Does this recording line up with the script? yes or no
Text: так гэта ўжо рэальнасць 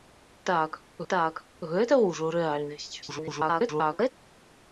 no